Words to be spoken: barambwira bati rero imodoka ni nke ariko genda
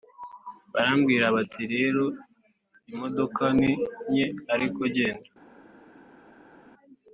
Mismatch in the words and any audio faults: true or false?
false